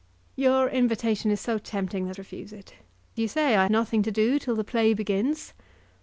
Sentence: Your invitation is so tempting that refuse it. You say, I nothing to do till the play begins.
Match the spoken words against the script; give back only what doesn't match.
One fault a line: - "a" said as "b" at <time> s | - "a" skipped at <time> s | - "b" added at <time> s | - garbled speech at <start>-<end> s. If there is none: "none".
none